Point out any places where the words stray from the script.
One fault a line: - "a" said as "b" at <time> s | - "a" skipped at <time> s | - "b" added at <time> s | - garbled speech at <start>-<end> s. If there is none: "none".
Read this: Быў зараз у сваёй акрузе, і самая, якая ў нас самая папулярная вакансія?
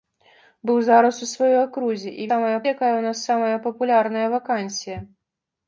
none